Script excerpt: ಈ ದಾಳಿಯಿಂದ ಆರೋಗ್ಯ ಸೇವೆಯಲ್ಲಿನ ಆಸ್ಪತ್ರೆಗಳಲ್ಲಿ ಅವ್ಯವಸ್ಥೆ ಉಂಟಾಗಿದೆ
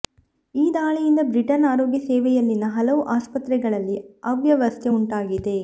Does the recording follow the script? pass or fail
fail